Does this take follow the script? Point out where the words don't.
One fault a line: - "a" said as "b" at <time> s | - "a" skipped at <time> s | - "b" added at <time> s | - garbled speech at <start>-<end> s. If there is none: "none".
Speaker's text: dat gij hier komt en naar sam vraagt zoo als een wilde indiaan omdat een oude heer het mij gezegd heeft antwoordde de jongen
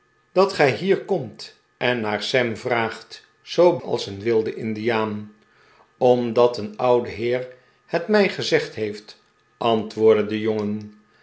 none